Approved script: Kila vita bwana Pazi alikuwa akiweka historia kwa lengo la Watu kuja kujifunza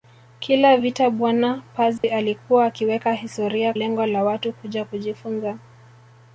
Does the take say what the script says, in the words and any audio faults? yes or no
no